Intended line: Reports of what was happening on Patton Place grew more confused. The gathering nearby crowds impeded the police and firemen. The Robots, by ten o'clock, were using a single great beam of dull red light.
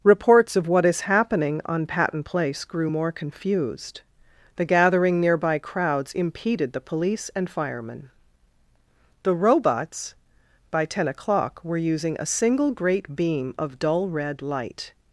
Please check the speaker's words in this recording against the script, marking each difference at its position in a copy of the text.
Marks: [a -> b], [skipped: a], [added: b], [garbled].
Reports of what [was -> is] happening on Patton Place grew more confused. The gathering nearby crowds impeded the police and firemen. The Robots, by ten o'clock, were using a single great beam of dull red light.